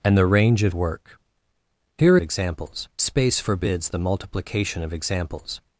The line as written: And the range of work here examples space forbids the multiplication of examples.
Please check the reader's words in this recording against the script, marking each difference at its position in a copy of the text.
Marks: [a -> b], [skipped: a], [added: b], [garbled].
And the range of work here examples space forbids the multiplication of examples.